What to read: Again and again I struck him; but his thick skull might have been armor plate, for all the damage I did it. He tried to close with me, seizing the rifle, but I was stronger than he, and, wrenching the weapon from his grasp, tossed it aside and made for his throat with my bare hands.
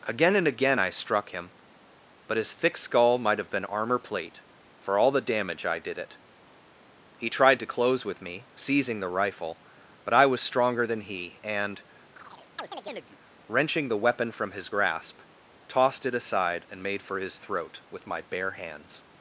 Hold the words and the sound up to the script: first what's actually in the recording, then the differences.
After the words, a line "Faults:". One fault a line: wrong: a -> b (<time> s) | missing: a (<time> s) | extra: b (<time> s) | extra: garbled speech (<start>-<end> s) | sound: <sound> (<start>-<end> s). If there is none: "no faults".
Again and again I struck him; but his thick skull might have been armor plate, for all the damage I did it. He tried to close with me, seizing the rifle, but I was stronger than he, and, wrenching the weapon from his grasp, tossed it aside and made for his throat with my bare hands.
Faults:
sound: chirp (12.2-13.2 s)